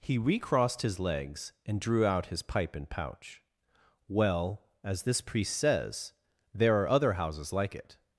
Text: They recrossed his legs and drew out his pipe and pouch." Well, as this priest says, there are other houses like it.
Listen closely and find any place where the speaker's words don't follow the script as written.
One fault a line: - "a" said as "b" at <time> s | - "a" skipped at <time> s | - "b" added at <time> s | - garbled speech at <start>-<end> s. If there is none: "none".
- "They" said as "He" at 0.0 s